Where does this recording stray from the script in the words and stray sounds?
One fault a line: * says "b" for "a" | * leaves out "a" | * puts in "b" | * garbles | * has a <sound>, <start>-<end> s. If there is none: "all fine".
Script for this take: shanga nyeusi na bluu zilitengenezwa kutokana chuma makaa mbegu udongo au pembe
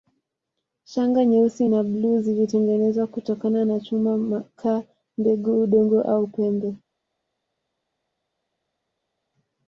* puts in "na"